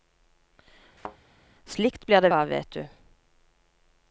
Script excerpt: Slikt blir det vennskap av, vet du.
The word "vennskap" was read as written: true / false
false